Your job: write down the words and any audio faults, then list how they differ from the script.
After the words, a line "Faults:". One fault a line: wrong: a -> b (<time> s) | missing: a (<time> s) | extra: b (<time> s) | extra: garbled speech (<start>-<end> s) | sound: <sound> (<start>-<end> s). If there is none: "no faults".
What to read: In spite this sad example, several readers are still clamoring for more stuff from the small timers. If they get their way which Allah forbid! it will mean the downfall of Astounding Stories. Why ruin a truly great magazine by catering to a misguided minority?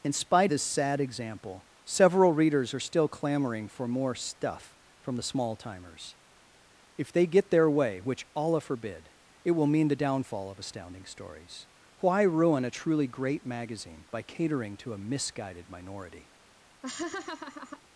In spite this sad example, several readers are still clamoring for more stuff from the small timers. If they get their way which Allah forbid! it will mean the downfall of Astounding Stories. Why ruin a truly great magazine by catering to a misguided minority?
Faults:
sound: laugh (16.8-17.8 s)